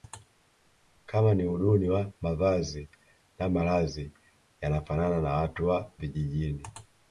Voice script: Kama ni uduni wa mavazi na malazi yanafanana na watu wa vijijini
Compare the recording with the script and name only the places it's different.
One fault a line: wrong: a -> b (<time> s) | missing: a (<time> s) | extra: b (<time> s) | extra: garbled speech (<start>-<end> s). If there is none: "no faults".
no faults